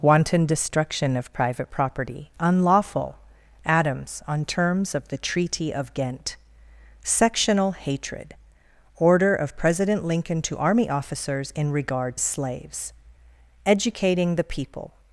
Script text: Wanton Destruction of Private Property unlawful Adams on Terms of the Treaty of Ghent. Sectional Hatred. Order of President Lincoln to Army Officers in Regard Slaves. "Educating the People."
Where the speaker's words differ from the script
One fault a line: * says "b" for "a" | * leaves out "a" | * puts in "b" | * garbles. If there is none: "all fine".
all fine